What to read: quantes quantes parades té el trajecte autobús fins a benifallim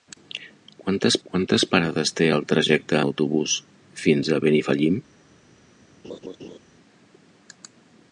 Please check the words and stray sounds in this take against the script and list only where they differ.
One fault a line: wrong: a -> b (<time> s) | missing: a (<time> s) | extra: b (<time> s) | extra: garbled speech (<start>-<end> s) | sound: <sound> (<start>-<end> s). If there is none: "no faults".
sound: laugh (6.0-6.6 s)